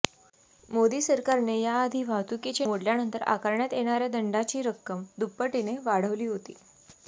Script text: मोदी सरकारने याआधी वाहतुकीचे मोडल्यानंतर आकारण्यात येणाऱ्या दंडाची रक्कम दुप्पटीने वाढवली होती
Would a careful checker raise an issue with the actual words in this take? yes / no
no